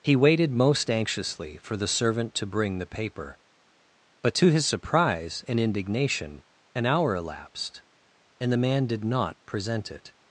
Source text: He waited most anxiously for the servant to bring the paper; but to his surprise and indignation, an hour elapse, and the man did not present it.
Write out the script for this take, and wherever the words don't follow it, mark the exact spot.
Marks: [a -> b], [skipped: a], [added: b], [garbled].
He waited most anxiously for the servant to bring the paper; but to his surprise and indignation, an hour [elapse, -> elapsed] and the man did not present it.